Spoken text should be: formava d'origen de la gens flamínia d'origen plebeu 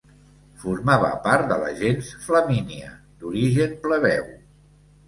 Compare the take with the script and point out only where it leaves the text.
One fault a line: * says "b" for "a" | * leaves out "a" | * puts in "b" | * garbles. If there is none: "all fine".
* says "part" for "d'origen"